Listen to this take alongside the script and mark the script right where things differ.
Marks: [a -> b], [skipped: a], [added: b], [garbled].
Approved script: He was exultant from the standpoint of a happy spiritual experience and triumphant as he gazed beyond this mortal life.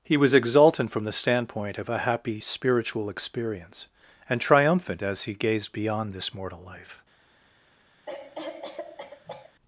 He was exultant from the standpoint of a happy spiritual experience and triumphant as he gazed beyond this mortal life.